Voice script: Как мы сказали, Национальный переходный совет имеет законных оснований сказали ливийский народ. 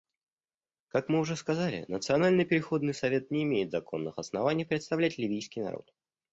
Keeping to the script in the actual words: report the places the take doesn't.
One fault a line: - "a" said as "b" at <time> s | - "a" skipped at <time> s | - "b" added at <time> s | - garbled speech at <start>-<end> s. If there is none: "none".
- "уже" added at 1.2 s
- "не" added at 3.3 s
- "сказали" said as "представлять" at 4.6 s